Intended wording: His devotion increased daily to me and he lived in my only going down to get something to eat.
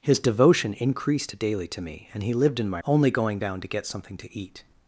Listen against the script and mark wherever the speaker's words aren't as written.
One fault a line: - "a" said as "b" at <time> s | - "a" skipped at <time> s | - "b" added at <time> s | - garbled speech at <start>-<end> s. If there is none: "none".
none